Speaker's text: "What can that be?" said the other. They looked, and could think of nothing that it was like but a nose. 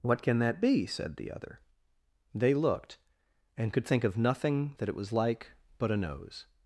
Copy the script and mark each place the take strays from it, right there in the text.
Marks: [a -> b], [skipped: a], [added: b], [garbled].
"What can that be?" said the other. They looked, and could think of nothing that it was like but a nose.